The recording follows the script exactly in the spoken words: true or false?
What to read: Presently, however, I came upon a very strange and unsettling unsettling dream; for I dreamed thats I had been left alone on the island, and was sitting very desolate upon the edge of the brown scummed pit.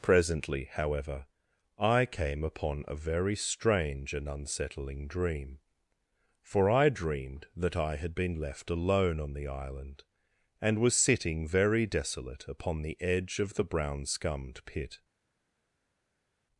false